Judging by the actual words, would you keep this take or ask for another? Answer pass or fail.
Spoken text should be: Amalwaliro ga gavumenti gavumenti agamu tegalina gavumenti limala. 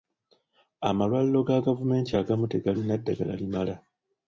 fail